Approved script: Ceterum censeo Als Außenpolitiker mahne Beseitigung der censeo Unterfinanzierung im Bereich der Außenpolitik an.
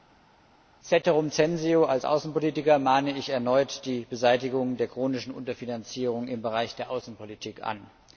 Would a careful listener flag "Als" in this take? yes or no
no